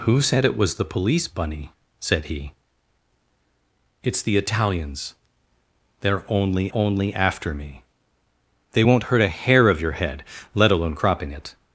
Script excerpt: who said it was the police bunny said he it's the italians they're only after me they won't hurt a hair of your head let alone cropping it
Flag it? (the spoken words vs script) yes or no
yes